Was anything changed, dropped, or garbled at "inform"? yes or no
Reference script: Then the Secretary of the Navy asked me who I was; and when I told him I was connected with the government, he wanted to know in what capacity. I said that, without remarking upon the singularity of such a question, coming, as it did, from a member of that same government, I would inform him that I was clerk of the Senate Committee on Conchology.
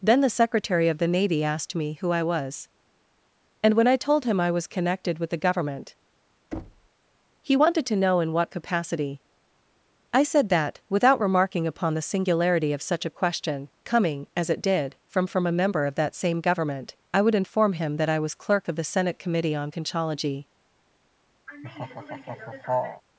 no